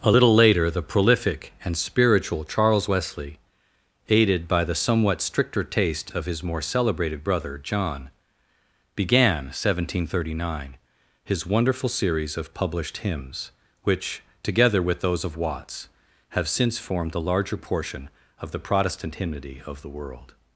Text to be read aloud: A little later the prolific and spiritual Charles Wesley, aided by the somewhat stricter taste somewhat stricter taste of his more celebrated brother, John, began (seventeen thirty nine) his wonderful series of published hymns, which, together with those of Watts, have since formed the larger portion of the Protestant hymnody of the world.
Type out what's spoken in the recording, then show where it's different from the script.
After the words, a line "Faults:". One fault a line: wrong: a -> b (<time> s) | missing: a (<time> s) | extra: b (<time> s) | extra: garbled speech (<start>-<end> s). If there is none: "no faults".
A little later the prolific and spiritual Charles Wesley, aided by the somewhat stricter taste of his more celebrated brother, John, began (seventeen thirty nine) his wonderful series of published hymns, which, together with those of Watts, have since formed the larger portion of the Protestant hymnody of the world.
Faults:
missing: somewhat stricter taste (6.1 s)